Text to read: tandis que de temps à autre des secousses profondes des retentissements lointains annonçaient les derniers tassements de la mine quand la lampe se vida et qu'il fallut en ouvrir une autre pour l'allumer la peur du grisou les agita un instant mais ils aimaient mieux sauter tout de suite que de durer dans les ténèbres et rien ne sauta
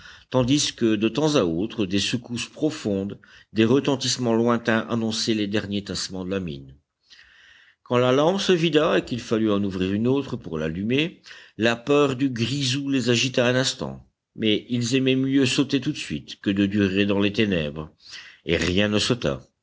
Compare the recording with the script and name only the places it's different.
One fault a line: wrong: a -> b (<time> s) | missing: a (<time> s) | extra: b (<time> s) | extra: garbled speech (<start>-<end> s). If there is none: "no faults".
no faults